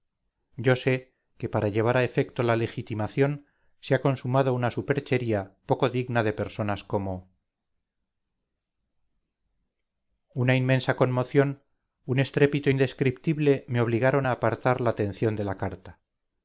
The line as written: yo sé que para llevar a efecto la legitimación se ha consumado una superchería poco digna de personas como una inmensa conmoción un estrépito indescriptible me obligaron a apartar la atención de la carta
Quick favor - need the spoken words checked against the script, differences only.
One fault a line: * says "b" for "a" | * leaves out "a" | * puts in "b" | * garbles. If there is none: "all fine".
all fine